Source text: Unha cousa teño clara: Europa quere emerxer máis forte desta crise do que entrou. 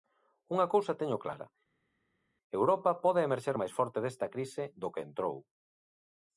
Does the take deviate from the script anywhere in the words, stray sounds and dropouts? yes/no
yes